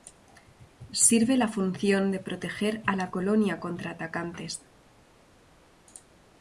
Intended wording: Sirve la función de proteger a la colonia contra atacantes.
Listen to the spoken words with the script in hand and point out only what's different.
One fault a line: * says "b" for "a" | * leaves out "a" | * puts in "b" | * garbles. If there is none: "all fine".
all fine